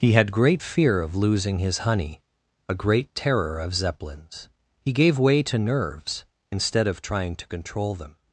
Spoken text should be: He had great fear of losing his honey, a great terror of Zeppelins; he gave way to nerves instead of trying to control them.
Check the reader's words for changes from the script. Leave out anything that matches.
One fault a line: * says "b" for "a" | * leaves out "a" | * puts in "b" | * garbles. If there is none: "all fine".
all fine